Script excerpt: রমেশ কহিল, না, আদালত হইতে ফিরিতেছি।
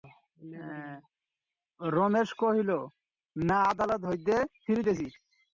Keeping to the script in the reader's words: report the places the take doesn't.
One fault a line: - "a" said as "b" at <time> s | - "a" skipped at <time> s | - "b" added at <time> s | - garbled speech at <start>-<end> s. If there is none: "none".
none